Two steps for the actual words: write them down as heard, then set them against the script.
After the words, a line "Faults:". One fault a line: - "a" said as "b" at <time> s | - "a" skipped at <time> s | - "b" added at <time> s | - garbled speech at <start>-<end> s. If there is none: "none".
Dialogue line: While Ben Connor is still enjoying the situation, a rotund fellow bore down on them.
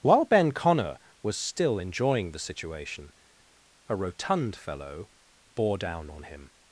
While Ben Connor was still enjoying the situation, a rotund fellow bore down on him.
Faults:
- "is" said as "was" at 1.2 s
- "them" said as "him" at 6.2 s